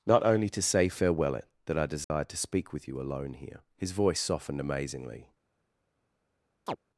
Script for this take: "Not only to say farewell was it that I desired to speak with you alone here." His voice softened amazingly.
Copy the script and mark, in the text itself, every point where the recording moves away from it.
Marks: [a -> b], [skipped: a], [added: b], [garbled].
"Not only to say farewell [skipped: was] it that I desired to speak with you alone here." His voice softened amazingly.